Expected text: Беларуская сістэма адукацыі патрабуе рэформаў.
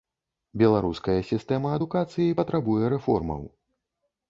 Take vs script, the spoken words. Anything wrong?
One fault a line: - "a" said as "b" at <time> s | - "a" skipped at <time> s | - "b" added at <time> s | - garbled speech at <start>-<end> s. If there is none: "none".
none